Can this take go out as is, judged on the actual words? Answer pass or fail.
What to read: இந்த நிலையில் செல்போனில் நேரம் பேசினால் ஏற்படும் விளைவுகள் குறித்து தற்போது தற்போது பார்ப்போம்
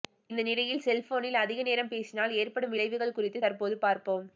fail